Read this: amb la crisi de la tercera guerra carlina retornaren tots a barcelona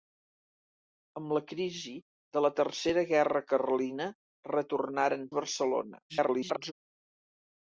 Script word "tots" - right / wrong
wrong